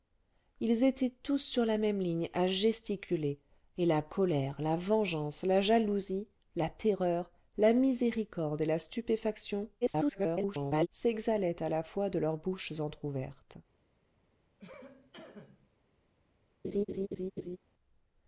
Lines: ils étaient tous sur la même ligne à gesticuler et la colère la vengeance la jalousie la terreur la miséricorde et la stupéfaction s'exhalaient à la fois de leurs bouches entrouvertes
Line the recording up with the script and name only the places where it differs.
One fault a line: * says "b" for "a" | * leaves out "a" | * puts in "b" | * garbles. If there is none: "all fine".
* garbles